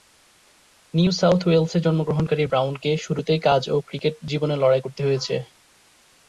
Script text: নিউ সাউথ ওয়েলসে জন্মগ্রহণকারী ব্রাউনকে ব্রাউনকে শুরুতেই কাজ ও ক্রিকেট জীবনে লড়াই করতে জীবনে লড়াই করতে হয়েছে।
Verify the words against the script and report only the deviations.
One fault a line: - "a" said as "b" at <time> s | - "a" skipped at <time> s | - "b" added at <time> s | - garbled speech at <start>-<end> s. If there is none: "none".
- "ব্রাউনকে" skipped at 2.9 s
- "জীবনে লড়াই করতে" skipped at 5.0 s